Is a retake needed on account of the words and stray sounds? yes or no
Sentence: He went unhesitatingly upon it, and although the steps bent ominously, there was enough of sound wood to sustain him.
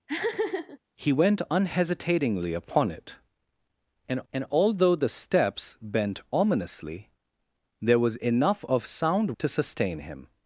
yes